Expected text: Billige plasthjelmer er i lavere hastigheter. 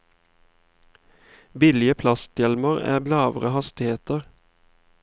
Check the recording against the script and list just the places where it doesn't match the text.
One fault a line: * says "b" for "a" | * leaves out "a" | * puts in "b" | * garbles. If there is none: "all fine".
all fine